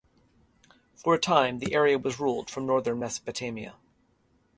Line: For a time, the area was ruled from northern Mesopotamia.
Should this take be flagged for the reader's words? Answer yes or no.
no